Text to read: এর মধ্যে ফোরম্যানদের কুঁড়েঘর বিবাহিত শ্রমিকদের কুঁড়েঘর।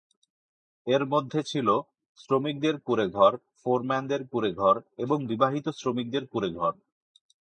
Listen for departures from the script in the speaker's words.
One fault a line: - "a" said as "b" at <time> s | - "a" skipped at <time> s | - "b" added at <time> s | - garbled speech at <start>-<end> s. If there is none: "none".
- "ছিল শ্রমিকদের কুঁড়েঘর" added at 1.4 s
- "এবং" added at 5.0 s